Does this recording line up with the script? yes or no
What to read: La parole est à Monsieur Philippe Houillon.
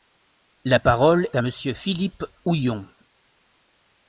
no